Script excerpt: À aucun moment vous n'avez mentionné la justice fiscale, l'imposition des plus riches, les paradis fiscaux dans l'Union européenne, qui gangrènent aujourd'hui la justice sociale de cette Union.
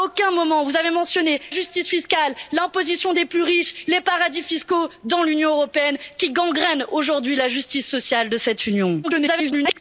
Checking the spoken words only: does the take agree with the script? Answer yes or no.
no